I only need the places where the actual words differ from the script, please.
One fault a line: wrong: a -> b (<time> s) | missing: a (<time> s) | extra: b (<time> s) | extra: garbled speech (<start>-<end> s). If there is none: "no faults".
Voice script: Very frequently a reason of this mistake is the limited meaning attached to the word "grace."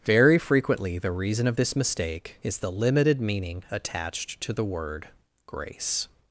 wrong: a -> the (1.0 s)